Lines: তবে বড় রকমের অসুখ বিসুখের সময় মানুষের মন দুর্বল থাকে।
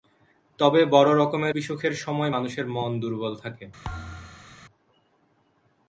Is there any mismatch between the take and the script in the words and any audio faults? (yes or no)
yes